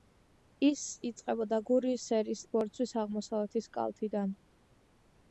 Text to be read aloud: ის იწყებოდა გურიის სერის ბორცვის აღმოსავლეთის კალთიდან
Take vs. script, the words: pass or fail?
pass